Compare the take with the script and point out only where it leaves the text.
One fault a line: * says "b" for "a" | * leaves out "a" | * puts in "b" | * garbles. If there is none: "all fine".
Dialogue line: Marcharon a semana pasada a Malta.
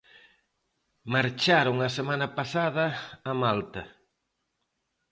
all fine